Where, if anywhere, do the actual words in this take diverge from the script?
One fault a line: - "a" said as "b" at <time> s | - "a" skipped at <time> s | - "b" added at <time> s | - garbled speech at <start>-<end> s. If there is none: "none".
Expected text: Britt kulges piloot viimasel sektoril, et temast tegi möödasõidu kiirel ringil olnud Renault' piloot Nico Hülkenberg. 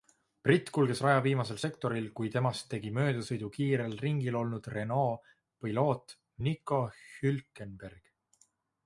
- "piloot" said as "raja" at 1.1 s
- "et" said as "kui" at 2.2 s